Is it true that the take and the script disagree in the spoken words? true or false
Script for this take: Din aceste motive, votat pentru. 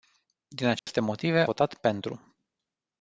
false